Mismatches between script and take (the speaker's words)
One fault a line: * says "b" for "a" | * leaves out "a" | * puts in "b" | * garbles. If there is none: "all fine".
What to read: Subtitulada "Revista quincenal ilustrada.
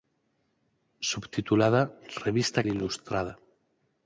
* leaves out "quincenal"